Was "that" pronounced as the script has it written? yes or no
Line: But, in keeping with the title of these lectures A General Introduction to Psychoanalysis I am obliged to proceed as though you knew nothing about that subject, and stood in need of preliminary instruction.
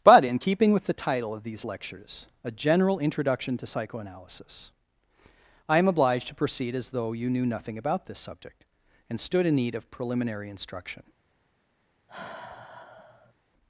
no